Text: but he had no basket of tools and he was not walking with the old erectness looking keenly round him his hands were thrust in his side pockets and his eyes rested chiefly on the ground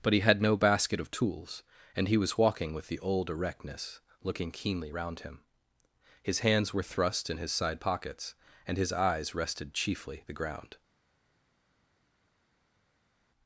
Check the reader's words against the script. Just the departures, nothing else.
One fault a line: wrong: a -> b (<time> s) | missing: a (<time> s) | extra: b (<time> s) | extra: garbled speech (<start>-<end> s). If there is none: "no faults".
missing: not (2.4 s)
missing: on (10.2 s)